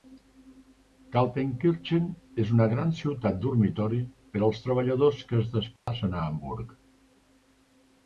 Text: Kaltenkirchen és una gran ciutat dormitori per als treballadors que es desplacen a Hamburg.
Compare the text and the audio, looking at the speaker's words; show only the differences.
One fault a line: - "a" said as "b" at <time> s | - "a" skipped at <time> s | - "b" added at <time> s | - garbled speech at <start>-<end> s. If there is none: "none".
none